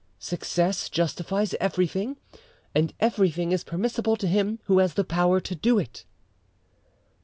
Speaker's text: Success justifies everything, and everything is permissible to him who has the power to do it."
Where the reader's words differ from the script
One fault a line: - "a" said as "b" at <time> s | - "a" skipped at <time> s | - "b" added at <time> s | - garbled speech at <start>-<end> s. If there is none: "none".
none